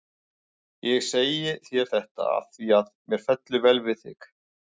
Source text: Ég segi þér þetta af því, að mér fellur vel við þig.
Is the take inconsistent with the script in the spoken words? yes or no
no